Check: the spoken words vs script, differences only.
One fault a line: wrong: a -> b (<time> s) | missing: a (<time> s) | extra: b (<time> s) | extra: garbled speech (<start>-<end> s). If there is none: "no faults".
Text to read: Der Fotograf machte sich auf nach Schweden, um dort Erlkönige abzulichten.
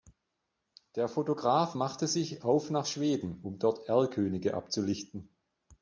no faults